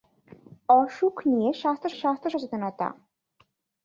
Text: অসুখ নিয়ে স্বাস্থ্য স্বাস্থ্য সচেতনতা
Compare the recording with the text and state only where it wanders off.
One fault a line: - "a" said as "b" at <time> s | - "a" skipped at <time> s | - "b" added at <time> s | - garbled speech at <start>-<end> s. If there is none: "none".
none